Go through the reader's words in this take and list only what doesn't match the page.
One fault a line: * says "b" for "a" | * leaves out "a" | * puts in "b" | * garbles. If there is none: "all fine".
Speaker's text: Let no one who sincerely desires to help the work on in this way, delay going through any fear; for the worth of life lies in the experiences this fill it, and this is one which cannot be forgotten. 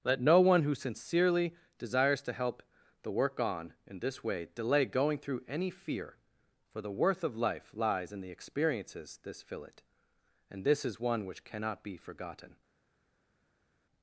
all fine